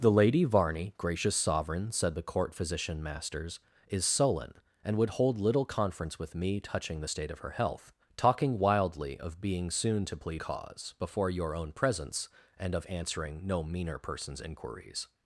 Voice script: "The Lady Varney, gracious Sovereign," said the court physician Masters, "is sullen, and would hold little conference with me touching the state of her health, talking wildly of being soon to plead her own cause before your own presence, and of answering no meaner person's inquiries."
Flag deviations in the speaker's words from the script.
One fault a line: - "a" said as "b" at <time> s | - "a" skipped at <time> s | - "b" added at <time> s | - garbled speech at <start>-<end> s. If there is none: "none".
- "her own" skipped at 10.4 s